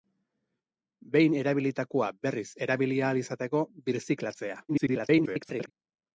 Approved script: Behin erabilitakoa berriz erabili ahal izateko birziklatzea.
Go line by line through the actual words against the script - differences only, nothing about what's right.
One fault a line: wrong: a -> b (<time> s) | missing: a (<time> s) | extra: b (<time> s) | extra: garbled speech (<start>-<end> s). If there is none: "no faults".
extra: garbled speech (4.7-5.7 s)